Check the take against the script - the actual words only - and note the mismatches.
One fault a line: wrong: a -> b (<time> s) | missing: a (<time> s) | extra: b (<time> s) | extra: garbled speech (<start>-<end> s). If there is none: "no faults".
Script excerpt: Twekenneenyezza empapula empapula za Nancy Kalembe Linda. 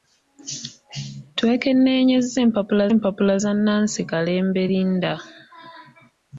no faults